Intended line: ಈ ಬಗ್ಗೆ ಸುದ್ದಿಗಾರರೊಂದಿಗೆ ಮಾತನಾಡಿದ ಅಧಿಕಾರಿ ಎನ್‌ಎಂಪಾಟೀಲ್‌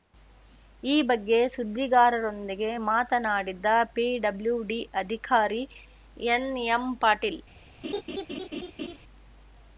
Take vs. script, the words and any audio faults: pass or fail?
fail